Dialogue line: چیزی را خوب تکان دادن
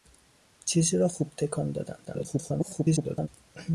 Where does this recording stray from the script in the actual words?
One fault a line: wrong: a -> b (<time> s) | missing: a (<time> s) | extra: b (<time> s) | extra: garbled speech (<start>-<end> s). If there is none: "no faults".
extra: garbled speech (2.0-3.3 s)